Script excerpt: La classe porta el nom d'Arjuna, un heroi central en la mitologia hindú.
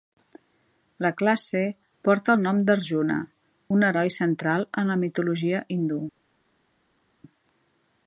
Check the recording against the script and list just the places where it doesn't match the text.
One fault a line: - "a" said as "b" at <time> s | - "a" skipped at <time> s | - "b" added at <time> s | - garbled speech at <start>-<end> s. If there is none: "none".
none